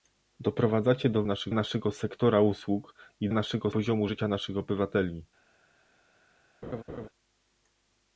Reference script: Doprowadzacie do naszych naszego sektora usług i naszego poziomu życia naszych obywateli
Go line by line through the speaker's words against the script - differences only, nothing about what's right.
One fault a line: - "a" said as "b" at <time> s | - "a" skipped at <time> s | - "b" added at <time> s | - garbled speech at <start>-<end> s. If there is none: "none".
none